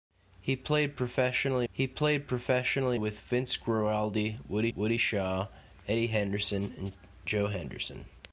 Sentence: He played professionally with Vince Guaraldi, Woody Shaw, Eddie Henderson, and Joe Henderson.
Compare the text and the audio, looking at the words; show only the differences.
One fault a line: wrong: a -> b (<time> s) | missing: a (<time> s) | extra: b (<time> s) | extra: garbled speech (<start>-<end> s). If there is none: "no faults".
extra: he played professionally (1.7 s)
extra: Woody (4.7 s)